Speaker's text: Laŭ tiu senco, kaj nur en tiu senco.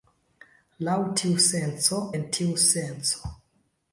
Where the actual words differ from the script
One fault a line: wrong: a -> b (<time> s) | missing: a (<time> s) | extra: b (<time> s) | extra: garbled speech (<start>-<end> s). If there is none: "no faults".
missing: kaj nur (2.0 s)